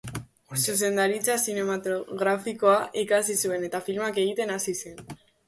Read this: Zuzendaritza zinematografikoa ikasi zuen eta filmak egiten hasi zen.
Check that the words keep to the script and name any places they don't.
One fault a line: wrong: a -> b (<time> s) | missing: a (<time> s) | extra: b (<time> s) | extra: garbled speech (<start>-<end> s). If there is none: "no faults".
no faults